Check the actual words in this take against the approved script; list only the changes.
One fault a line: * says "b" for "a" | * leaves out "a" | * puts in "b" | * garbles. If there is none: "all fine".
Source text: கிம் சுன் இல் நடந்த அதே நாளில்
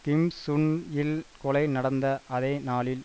* puts in "கொலை"